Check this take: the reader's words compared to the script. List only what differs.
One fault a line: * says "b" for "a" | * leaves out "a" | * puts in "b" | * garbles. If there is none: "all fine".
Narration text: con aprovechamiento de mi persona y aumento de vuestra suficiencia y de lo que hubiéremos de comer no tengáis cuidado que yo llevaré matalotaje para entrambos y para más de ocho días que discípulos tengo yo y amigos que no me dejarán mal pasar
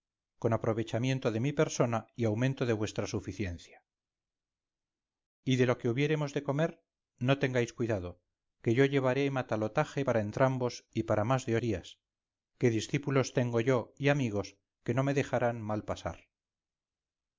* leaves out "ocho"